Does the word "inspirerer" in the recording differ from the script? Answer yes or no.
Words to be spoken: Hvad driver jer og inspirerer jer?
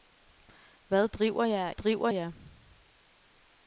yes